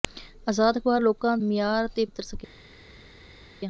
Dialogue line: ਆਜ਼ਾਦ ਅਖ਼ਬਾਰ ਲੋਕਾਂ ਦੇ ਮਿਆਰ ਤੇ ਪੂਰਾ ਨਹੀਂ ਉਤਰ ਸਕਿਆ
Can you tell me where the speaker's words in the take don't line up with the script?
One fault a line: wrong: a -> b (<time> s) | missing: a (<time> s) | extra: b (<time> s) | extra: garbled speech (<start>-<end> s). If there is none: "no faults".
missing: ਦੇ (1.4 s)
missing: ਪੂਰਾ ਨਹੀਂ (2.1 s)